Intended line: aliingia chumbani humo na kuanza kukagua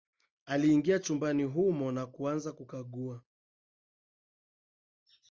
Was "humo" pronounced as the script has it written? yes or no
yes